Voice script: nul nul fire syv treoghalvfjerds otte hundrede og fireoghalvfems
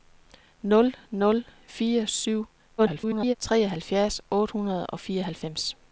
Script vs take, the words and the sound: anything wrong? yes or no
yes